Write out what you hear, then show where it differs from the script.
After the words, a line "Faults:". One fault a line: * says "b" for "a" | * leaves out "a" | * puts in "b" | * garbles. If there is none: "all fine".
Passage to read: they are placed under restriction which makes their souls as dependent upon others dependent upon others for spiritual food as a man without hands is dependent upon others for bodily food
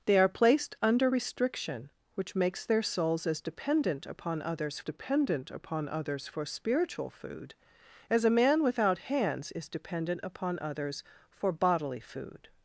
they are placed under restriction which makes their souls as dependent upon others dependent upon others for spiritual food as a man without hands is dependent upon others for bodily food
Faults:
all fine